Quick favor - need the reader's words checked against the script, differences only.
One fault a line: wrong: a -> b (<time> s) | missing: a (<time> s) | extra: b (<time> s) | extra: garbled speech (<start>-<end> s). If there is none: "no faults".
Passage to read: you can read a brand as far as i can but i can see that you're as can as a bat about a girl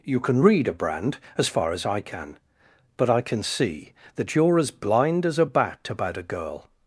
wrong: can -> blind (4.7 s)